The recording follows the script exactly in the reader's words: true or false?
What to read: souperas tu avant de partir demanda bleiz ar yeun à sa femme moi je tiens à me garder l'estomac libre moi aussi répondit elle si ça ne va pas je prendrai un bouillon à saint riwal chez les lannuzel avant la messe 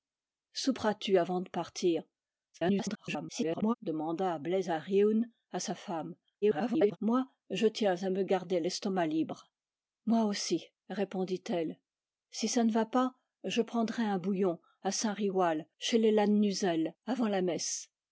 false